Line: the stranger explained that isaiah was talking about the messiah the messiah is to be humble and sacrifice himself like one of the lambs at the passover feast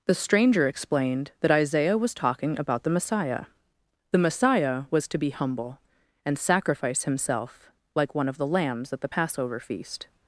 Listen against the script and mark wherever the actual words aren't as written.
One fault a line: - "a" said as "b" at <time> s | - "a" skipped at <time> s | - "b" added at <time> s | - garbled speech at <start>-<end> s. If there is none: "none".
- "is" said as "was" at 4.9 s